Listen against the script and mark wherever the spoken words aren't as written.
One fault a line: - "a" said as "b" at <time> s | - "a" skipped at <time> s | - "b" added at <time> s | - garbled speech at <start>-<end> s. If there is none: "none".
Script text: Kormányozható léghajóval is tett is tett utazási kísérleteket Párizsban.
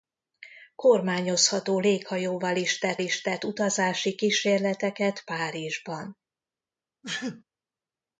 none